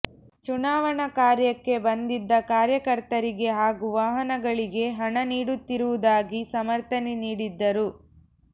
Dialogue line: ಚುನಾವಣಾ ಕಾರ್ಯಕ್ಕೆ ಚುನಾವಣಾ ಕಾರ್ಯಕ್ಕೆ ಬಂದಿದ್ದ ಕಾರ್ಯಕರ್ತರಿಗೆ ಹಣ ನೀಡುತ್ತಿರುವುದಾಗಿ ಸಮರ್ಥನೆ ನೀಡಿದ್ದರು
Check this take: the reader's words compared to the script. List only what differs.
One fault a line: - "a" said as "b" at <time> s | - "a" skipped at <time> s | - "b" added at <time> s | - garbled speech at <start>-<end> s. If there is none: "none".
- "ಚುನಾವಣಾ ಕಾರ್ಯಕ್ಕೆ ಬಂದಿದ್ದ ಕಾರ್ಯಕರ್ತರಿಗೆ" said as "ಬಂದಿದ್ದ ಕಾರ್ಯಕರ್ತರಿಗೆ ಹಾಗೂ ವಾಹನಗಳಿಗೆ" at 1.8 s